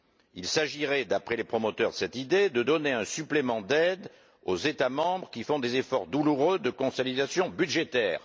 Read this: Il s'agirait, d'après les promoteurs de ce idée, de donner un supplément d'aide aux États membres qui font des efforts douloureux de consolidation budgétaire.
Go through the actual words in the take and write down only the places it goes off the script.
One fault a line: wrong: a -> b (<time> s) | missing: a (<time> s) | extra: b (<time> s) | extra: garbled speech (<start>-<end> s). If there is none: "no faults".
wrong: ce -> cette (1.9 s)